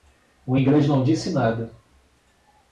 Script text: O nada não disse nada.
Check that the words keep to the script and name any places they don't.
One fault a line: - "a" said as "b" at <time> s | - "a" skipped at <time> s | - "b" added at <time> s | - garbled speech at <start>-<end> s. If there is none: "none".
- "nada" said as "inglês" at 0.5 s